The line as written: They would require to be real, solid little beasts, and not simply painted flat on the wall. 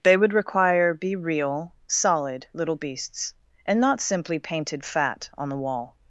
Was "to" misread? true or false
true